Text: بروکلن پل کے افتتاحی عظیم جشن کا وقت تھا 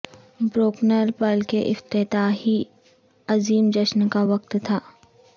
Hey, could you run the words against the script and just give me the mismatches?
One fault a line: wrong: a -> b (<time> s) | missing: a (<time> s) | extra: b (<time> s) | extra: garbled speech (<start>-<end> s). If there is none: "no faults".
no faults